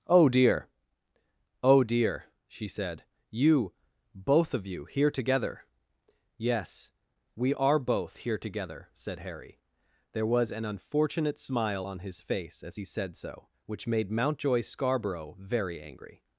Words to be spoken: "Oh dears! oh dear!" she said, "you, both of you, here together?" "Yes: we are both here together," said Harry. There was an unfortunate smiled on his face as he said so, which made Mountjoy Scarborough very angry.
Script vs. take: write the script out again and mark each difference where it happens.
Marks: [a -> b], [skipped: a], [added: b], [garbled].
"Oh [dears! -> dear] oh dear!" she said, "you, both of you, here together?" "Yes: we are both here together," said Harry. There was an unfortunate [smiled -> smile] on his face as he said so, which made Mountjoy Scarborough very angry.